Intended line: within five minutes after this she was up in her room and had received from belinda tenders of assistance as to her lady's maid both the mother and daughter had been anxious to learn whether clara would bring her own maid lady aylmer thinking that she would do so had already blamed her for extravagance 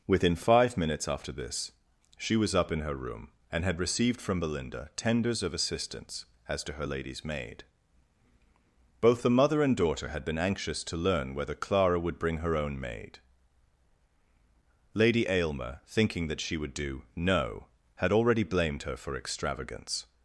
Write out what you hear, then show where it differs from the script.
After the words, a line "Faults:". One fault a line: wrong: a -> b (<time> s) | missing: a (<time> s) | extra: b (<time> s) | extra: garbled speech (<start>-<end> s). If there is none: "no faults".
within five minutes after this she was up in her room and had received from belinda tenders of assistance as to her lady's maid both the mother and daughter had been anxious to learn whether clara would bring her own maid lady aylmer thinking that she would do no had already blamed her for extravagance
Faults:
wrong: so -> no (17.2 s)